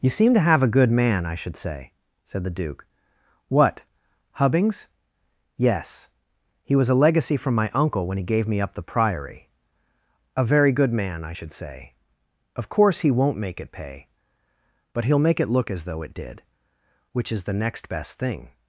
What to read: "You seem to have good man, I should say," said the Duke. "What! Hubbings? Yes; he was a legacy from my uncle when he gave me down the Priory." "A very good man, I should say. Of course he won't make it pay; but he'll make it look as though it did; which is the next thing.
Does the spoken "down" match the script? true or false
false